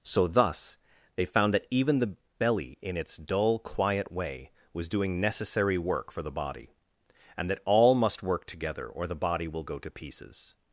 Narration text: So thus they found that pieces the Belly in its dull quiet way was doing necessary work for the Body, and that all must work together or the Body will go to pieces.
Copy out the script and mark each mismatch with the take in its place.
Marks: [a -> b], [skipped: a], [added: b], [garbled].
So thus they found that [pieces -> even] the Belly in its dull quiet way was doing necessary work for the Body, and that all must work together or the Body will go to pieces.